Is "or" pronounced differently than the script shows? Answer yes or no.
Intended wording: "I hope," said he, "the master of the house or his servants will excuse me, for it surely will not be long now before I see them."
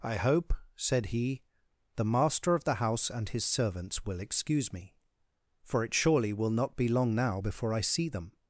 yes